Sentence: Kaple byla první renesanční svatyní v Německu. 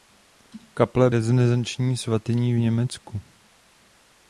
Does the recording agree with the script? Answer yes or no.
no